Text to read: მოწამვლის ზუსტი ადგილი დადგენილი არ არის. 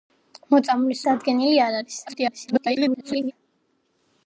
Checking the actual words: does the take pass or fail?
fail